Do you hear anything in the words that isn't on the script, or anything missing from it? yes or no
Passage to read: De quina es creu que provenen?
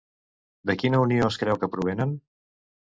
yes